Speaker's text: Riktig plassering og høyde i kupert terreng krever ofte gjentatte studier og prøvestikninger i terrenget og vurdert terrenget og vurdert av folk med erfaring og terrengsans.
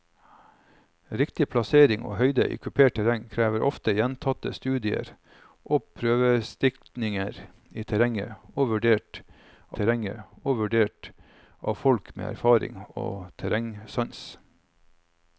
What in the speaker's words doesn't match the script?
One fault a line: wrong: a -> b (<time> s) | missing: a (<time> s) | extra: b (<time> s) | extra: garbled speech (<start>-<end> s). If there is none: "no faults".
no faults